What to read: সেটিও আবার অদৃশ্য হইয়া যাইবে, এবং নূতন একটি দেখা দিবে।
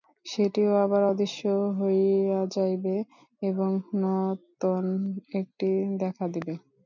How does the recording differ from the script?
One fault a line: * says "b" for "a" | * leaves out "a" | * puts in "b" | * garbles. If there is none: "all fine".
all fine